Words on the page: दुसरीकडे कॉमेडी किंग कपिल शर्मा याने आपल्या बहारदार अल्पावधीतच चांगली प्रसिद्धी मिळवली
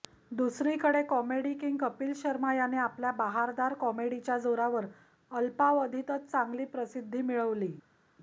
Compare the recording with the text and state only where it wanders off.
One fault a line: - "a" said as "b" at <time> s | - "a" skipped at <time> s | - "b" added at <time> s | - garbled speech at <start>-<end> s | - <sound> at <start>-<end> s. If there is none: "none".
- "कॉमेडीच्या जोरावर" added at 3.8 s